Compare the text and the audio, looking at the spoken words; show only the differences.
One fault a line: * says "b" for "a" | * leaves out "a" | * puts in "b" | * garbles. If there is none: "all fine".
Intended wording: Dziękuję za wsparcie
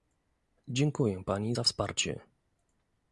* puts in "pani"